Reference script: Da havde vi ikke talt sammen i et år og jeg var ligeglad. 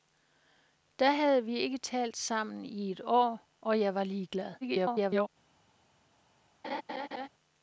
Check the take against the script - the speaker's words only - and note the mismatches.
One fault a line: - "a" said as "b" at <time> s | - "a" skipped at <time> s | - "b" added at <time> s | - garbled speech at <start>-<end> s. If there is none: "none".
- garbled speech at 4.6-5.3 s